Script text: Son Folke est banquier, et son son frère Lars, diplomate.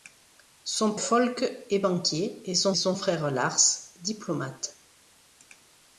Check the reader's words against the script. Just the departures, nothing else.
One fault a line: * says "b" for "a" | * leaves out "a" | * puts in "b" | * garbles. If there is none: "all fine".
all fine